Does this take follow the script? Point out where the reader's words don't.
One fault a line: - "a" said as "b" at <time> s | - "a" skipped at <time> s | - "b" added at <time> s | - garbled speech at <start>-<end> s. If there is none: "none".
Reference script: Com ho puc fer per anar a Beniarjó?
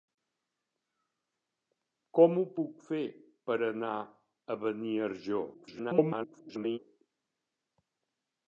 - garbled speech at 5.5-6.8 s